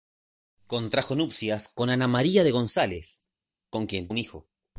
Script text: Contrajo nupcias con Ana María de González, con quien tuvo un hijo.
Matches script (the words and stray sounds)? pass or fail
fail